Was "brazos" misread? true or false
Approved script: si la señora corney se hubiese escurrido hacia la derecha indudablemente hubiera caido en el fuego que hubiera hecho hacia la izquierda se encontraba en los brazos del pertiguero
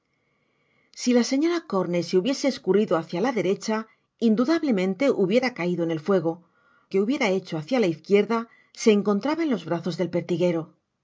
false